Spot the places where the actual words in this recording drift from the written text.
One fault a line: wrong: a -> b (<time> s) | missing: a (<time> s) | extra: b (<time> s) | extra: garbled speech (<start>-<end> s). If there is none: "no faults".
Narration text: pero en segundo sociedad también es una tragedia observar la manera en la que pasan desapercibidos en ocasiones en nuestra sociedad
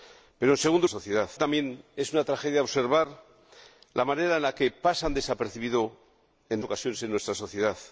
no faults